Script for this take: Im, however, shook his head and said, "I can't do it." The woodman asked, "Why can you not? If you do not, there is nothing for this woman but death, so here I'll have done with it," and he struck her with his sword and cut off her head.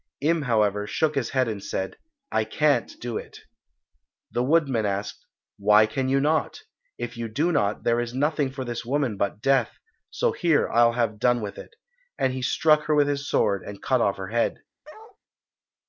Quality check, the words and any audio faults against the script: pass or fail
fail